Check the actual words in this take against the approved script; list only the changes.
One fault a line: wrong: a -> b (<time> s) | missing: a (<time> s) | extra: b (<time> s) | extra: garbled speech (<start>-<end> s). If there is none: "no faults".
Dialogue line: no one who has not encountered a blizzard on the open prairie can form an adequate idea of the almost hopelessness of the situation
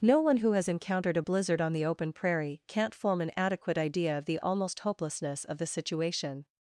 missing: not (0.7 s)
wrong: can -> can't (2.7 s)